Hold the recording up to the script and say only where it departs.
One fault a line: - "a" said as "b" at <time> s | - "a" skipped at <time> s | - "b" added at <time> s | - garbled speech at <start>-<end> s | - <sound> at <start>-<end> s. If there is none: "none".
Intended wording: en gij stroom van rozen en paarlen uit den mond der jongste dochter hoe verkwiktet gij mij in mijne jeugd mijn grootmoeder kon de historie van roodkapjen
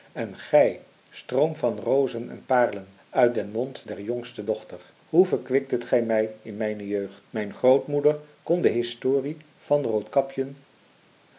none